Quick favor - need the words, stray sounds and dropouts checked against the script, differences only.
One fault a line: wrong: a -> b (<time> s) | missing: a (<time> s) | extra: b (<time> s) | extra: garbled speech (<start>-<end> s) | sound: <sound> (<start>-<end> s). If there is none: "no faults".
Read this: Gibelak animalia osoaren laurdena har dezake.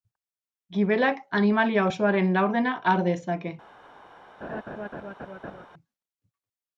sound: laugh (4.4-5.7 s)